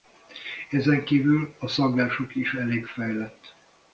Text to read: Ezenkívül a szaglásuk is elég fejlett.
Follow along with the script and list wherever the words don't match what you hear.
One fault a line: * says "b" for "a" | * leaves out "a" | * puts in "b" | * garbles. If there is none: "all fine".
all fine